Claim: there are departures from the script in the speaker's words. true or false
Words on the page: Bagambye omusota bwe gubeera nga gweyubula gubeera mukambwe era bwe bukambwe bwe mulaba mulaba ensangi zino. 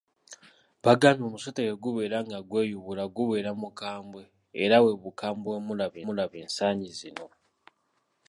false